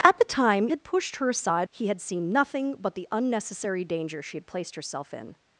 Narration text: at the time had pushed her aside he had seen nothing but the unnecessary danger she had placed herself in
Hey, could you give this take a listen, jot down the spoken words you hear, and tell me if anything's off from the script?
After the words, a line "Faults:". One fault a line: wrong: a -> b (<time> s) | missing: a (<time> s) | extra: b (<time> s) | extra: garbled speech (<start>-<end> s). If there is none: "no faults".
at the time had pushed her aside he had seen nothing but the unnecessary danger she had placed herself in
Faults:
no faults